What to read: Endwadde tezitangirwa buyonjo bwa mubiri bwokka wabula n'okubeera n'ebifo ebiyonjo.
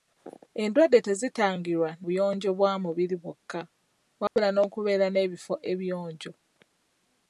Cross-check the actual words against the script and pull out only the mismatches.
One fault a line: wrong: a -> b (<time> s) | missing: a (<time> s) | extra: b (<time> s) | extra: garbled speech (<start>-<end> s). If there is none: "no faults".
no faults